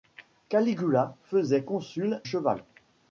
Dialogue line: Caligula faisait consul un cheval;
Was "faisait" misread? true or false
false